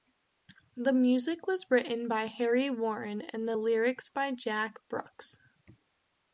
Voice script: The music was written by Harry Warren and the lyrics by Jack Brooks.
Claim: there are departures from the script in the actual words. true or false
false